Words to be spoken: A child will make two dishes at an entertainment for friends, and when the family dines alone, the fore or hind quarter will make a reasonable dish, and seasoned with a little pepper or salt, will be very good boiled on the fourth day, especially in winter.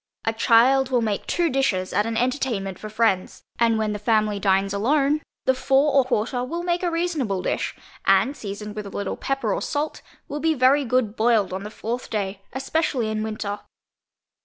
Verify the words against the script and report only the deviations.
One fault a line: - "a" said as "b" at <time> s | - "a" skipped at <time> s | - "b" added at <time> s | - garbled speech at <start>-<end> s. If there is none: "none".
- "hind" skipped at 6.0 s